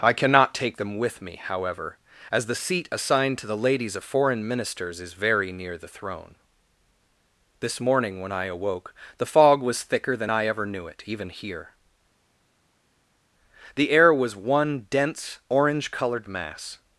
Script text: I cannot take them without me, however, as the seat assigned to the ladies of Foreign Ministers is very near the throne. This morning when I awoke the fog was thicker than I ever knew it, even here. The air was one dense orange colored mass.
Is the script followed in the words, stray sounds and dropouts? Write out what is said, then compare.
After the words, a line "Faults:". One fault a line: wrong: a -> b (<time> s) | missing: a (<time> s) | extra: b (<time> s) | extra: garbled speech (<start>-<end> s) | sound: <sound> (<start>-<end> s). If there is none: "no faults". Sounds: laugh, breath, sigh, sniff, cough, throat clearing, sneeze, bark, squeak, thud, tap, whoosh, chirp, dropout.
I cannot take them with me, however, as the seat assigned to the ladies of Foreign Ministers is very near the throne. This morning when I awoke the fog was thicker than I ever knew it, even here. The air was one dense orange colored mass.
Faults:
wrong: without -> with (1.0 s)